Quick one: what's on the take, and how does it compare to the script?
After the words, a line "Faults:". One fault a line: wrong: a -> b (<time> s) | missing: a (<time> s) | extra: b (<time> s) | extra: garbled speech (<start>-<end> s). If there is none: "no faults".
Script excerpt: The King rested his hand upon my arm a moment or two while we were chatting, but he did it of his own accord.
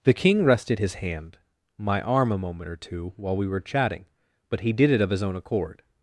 The King rested his hand my arm a moment or two while we were chatting, but he did it of his own accord.
Faults:
missing: upon (1.4 s)